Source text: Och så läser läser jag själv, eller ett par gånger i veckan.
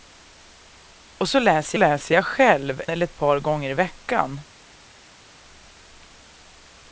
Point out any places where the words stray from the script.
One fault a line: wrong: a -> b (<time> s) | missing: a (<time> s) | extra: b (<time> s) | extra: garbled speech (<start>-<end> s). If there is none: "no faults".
no faults